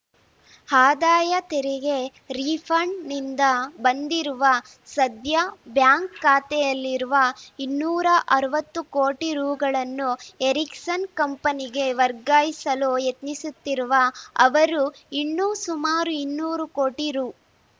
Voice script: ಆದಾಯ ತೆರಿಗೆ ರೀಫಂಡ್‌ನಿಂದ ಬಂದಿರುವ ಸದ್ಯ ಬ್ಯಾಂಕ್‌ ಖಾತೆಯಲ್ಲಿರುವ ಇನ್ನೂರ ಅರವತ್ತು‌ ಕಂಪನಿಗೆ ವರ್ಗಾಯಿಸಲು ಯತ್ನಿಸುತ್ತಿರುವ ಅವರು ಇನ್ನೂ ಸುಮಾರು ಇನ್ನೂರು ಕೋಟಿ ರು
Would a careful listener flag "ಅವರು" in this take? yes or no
no